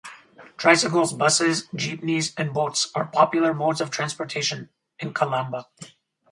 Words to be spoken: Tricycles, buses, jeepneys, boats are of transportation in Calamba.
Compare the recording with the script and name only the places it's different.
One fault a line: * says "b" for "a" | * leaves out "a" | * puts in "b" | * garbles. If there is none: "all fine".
* puts in "and"
* puts in "popular modes"